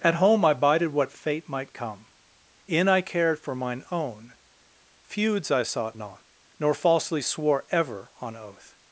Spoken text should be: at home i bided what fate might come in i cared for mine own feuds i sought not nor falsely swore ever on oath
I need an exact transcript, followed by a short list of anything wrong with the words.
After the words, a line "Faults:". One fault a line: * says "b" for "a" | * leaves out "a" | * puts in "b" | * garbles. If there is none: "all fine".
at home i bided what fate might come in i cared for mine own feuds i sought not nor falsely swore ever on oath
Faults:
all fine